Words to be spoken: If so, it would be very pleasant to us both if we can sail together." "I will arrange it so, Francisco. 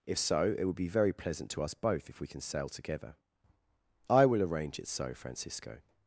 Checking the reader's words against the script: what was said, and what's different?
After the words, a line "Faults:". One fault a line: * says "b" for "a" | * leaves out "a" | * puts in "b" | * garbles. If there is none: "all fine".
If so, it would be very pleasant to us both if we can sail together." "I will arrange it so, Francisco.
Faults:
all fine